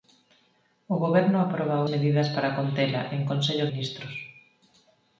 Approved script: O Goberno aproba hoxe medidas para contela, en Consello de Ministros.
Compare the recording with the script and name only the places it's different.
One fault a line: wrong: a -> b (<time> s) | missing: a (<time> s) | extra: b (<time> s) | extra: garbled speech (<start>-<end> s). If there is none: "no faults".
missing: hoxe (1.8 s)
missing: de (3.7 s)